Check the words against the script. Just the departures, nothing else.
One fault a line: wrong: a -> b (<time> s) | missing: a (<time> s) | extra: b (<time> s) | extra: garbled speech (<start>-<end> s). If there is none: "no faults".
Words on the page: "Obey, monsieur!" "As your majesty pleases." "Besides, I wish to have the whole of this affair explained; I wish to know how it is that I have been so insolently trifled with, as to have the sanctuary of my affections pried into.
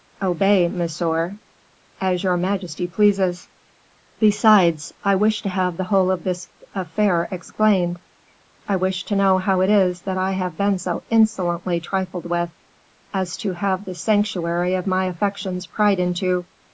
no faults